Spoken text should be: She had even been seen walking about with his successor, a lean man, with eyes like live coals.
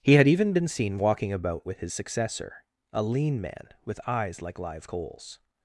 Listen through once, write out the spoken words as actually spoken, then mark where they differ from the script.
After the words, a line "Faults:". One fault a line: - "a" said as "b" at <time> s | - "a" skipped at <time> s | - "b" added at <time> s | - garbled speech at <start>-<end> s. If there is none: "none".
He had even been seen walking about with his successor, a lean man, with eyes like live coals.
Faults:
- "She" said as "He" at 0.0 s